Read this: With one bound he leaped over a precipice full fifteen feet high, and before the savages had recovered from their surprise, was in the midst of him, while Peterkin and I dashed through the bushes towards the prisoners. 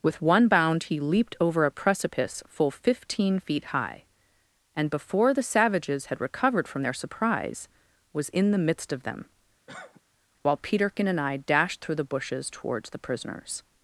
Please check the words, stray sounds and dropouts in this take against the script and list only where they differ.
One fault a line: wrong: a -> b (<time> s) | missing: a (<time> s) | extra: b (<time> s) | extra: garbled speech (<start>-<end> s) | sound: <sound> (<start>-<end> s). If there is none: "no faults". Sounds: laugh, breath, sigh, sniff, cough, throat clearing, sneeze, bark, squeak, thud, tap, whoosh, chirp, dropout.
wrong: him -> them (9.0 s)
sound: cough (9.7-10.0 s)